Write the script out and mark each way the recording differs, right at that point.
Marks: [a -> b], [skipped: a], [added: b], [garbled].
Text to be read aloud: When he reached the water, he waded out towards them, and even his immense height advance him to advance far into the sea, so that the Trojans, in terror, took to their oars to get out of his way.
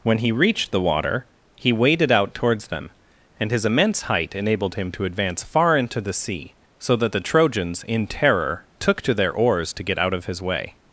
When he reached the water, he waded out towards them, and [skipped: even] his immense height [advance -> enabled] him to advance far into the sea, so that the Trojans, in terror, took to their oars to get out of his way.